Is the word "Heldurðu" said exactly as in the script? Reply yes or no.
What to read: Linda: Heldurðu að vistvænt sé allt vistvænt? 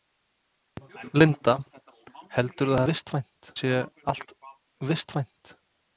yes